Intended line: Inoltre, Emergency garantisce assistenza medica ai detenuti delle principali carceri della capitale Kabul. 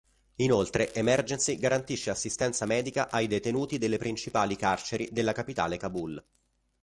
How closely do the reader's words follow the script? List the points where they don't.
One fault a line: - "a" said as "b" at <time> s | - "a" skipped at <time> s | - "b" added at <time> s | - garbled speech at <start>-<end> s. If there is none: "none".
none